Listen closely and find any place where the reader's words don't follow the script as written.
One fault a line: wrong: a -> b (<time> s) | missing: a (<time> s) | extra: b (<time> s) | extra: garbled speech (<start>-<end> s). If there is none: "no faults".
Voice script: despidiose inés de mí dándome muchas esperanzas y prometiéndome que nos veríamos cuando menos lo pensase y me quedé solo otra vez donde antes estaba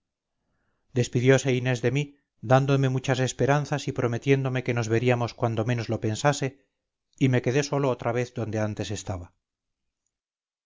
no faults